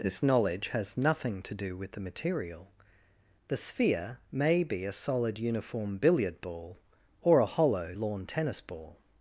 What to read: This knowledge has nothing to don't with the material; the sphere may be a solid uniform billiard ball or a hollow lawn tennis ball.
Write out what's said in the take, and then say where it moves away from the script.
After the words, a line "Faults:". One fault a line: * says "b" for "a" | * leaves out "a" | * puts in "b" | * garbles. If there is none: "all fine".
This knowledge has nothing to do with the material; the sphere may be a solid uniform billiard ball or a hollow lawn tennis ball.
Faults:
* says "do" for "don't"